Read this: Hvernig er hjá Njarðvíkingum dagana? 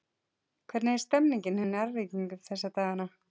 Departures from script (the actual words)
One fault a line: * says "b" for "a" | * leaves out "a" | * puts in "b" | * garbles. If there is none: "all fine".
* puts in "stemningin"
* puts in "þessa"